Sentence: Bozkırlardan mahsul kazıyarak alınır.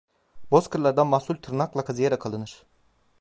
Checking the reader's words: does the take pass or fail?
fail